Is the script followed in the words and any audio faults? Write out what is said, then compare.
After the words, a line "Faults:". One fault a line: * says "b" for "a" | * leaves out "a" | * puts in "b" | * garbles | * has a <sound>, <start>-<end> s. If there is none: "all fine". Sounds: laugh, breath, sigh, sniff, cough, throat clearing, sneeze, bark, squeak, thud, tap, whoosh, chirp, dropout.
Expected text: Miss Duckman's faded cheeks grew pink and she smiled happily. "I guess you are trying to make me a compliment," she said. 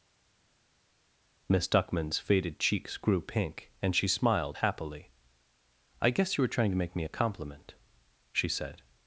Miss Duckman's faded cheeks grew pink and she smiled happily. "I guess you were trying to make me a compliment," she said.
Faults:
* says "were" for "are"